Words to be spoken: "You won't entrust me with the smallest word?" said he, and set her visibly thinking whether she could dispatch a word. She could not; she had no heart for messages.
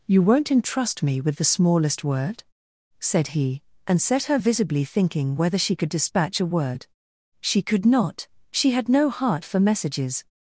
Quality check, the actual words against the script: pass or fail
pass